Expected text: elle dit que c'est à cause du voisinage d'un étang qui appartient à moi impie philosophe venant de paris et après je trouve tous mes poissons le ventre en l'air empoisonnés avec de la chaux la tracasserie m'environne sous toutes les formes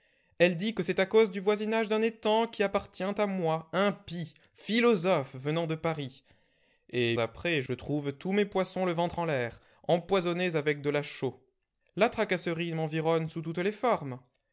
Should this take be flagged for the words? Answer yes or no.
no